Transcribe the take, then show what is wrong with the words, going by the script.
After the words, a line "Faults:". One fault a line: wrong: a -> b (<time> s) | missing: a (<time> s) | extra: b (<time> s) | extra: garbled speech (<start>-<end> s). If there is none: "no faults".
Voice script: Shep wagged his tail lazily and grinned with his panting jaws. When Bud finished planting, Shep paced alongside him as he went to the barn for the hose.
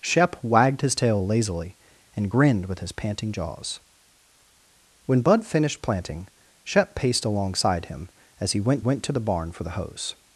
Shep wagged his tail lazily and grinned with his panting jaws. When Bud finished planting, Shep paced alongside him as he went went to the barn for the hose.
Faults:
extra: went (8.8 s)